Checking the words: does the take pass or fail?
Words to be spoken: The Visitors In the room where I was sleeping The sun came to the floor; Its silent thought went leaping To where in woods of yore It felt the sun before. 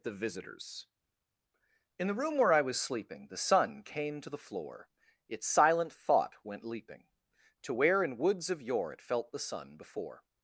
pass